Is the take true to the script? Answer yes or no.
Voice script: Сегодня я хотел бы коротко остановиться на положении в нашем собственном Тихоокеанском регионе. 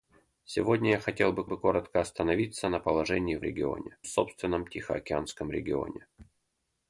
no